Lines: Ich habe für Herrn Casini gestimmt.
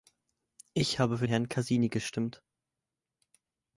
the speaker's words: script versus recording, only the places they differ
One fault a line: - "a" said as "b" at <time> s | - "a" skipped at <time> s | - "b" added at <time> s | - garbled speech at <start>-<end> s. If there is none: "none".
none